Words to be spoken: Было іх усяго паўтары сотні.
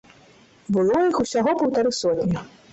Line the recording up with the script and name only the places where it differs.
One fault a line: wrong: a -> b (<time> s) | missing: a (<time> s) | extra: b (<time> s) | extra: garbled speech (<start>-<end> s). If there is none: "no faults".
no faults